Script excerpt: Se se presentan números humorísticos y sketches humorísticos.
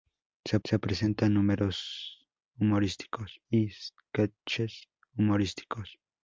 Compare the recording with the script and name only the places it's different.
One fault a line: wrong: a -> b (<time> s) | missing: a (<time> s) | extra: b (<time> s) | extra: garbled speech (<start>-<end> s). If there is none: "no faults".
no faults